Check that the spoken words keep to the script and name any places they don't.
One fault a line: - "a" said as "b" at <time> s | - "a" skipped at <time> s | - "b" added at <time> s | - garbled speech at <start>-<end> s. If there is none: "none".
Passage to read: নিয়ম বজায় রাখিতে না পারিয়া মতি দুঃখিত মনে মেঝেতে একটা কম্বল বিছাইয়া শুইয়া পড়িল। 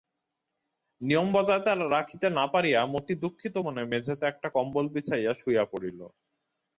none